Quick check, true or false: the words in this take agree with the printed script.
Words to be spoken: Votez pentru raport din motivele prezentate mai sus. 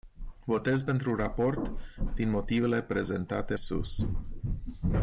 false